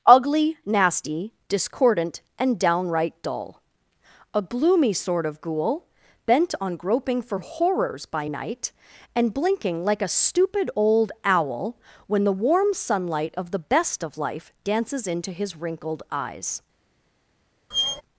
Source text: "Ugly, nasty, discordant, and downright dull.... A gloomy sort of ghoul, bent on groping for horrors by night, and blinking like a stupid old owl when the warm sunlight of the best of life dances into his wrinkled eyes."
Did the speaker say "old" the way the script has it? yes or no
yes